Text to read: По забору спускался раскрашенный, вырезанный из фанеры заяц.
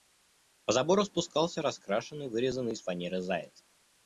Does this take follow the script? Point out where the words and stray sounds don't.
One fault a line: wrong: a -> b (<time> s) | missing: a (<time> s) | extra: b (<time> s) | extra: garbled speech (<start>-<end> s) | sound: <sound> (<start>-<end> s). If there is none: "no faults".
no faults